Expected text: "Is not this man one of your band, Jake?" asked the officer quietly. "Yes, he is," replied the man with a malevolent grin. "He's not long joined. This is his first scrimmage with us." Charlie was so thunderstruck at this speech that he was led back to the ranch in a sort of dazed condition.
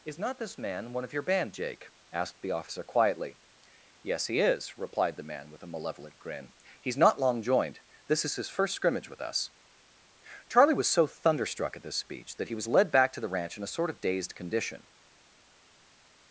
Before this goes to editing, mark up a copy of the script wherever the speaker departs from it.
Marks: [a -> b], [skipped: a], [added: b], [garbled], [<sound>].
"Is not this man one of your band, Jake?" asked the officer quietly. "Yes, he is," replied the man with a malevolent grin. "He's not long joined. This is his first scrimmage with us." Charlie was so thunderstruck at this speech that he was led back to the ranch in a sort of dazed condition.